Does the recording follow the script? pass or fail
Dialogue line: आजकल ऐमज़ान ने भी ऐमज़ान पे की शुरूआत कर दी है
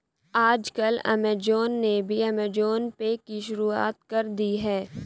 pass